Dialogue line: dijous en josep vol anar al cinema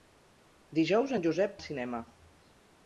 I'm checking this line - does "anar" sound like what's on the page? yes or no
no